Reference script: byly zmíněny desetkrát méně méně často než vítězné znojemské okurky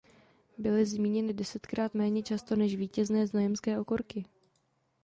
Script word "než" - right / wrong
right